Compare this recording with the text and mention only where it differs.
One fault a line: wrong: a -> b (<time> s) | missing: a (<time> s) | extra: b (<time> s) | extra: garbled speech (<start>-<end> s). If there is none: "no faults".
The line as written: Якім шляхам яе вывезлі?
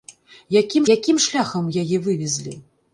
extra: якім (0.9 s)